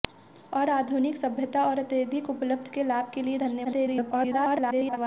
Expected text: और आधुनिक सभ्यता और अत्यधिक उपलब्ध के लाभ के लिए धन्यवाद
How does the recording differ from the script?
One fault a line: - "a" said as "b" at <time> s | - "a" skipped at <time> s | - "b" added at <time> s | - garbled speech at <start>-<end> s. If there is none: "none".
- garbled speech at 3.6-5.0 s